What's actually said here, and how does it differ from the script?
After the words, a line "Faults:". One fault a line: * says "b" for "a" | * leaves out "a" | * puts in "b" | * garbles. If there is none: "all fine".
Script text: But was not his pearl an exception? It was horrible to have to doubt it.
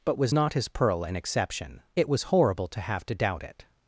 But was not his pearl an exception? It was horrible to have to doubt it.
Faults:
all fine